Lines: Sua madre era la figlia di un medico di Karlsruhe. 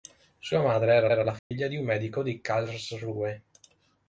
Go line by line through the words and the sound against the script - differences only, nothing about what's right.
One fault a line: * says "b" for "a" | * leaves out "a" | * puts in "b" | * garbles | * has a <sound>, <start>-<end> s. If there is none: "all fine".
* puts in "era"
* has a dropout, 1.4-1.5 s